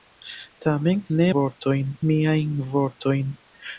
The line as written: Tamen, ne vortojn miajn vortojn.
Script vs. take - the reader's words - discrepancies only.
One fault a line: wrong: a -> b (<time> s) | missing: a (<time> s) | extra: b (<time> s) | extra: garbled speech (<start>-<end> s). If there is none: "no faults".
no faults